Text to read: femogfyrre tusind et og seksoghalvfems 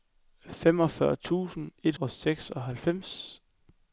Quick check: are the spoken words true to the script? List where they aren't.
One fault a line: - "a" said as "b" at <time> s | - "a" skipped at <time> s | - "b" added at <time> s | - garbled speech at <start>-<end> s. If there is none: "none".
none